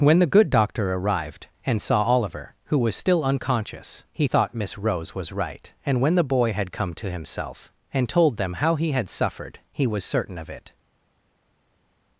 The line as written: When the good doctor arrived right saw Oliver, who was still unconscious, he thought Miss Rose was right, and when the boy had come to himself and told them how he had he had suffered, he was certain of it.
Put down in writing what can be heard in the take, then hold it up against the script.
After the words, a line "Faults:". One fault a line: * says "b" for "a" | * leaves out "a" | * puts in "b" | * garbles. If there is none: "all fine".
When the good doctor arrived and saw Oliver, who was still unconscious, he thought Miss Rose was right, and when the boy had come to himself and told them how he had suffered, he was certain of it.
Faults:
* says "and" for "right"
* leaves out "he had"